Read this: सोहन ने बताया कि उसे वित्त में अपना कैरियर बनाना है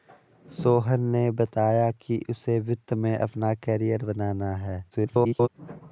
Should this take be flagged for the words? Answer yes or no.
yes